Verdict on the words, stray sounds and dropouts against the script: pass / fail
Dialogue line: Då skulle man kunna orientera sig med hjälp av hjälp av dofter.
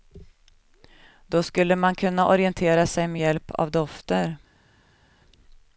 fail